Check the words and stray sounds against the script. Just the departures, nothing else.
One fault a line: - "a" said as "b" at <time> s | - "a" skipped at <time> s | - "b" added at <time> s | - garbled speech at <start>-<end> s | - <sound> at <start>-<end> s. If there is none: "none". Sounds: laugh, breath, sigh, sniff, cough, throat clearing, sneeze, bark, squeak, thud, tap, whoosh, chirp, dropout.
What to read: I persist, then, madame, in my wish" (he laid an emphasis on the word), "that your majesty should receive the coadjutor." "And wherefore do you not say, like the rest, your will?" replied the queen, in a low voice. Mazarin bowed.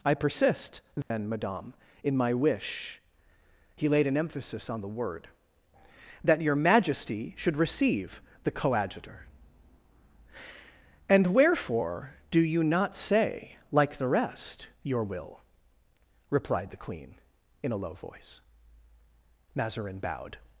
- dropout at 1.0-1.1 s